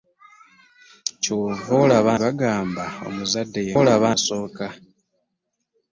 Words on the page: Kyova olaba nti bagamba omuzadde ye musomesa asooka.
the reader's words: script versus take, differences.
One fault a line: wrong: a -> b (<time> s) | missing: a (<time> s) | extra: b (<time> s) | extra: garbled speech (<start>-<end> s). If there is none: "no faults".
missing: nti (2.1 s)
wrong: musomesa -> olaba (3.8 s)